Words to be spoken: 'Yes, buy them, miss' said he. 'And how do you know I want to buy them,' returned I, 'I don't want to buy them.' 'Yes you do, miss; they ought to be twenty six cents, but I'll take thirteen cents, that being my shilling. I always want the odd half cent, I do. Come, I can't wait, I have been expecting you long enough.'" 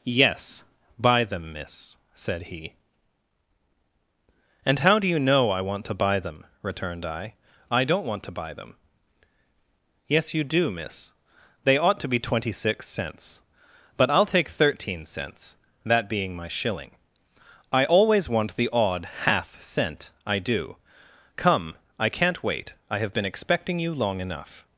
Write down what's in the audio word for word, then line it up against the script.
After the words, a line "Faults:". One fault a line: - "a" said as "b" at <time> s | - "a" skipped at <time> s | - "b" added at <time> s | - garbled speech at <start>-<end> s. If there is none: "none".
'Yes, buy them, miss' said he. 'And how do you know I want to buy them,' returned I, 'I don't want to buy them.' 'Yes you do, miss; they ought to be twenty six cents, but I'll take thirteen cents, that being my shilling. I always want the odd half cent, I do. Come, I can't wait, I have been expecting you long enough.'"
Faults:
none